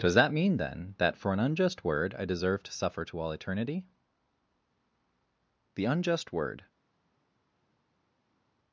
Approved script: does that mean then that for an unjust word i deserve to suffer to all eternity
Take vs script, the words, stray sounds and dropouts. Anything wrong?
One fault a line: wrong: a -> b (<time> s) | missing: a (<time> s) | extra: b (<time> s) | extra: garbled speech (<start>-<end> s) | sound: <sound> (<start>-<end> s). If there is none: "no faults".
extra: the unjust word (5.8 s)